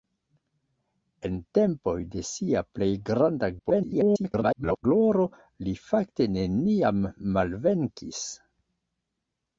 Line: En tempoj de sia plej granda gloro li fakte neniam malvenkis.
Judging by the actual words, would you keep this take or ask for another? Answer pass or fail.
fail